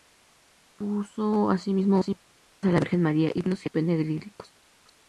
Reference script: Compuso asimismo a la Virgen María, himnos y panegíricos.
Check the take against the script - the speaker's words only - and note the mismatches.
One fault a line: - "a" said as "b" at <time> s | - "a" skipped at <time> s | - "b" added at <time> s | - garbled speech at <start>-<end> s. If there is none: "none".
none